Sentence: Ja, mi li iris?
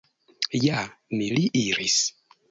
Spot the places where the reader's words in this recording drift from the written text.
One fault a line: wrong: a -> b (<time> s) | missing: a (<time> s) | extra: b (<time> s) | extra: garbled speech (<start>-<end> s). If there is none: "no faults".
no faults